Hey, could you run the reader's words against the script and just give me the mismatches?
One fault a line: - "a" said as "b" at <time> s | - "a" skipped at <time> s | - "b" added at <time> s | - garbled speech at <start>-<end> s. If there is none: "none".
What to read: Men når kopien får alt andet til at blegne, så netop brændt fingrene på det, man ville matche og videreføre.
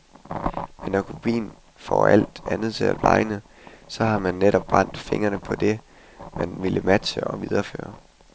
- "har man" added at 4.0 s